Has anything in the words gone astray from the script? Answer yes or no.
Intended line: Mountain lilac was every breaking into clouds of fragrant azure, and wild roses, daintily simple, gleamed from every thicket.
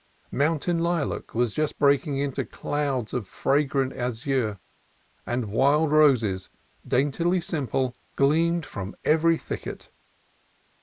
yes